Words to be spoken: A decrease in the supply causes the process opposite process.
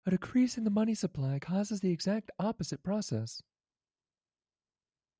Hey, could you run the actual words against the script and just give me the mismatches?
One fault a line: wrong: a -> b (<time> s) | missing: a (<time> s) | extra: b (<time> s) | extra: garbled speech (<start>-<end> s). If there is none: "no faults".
extra: money (0.7 s)
wrong: process -> exact (1.9 s)